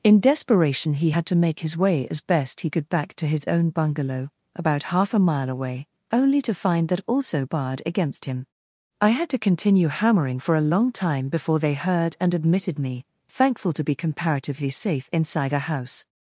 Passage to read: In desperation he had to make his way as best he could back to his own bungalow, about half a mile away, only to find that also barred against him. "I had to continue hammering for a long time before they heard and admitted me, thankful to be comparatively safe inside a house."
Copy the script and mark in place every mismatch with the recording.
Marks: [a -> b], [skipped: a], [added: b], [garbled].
In desperation he had to make his way as best he could back to his own bungalow, about half a mile away, only to find that also barred against him. "I had to continue hammering for a long time before they heard and admitted me, thankful to be comparatively safe inside a house."